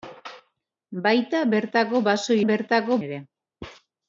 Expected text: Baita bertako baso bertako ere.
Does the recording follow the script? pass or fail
pass